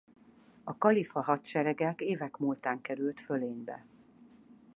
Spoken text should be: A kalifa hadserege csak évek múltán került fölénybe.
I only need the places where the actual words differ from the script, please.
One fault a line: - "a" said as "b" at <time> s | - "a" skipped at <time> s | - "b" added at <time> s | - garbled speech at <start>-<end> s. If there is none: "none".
- "csak" skipped at 1.9 s